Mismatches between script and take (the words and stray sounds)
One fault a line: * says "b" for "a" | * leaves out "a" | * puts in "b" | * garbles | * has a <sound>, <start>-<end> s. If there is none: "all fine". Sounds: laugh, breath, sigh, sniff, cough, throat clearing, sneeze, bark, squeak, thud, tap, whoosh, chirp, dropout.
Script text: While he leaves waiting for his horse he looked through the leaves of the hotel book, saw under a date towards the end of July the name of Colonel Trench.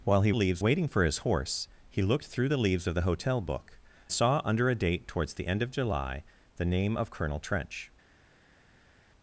all fine